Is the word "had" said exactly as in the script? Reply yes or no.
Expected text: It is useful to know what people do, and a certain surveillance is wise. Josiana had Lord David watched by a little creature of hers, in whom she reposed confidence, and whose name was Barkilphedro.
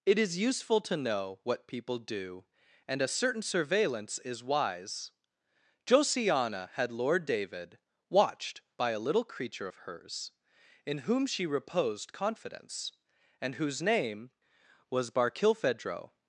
yes